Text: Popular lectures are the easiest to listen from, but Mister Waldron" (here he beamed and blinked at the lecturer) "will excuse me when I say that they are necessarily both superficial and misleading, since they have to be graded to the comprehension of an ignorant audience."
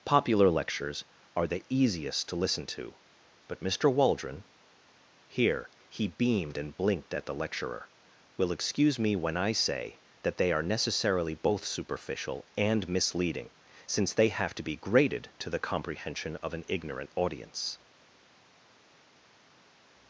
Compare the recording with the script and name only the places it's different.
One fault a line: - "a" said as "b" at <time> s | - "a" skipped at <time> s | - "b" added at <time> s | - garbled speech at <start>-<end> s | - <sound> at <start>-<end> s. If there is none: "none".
- "from" said as "to" at 2.6 s